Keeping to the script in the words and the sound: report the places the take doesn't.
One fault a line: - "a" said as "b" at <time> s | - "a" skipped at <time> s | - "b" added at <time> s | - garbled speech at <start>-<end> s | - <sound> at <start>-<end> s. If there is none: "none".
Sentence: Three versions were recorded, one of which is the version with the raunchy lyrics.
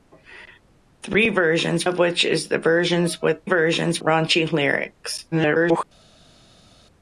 - "were recorded one" skipped at 1.9 s
- "the" said as "versions" at 3.4 s
- garbled speech at 5.3-5.8 s